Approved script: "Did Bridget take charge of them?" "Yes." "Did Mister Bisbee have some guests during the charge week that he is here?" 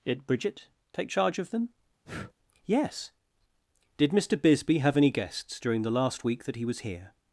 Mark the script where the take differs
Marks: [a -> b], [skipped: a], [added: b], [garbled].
"Did Bridget take charge of them?" "Yes." "Did Mister Bisbee have [some -> any] guests during the [charge -> last] week that he [is -> was] here?"